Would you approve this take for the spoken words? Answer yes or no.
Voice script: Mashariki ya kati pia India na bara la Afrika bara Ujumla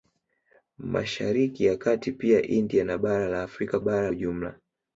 yes